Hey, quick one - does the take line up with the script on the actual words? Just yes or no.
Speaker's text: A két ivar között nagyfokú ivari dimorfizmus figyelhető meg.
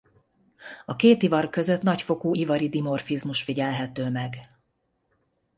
yes